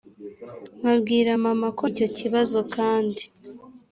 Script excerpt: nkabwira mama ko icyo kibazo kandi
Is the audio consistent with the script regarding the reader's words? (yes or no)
yes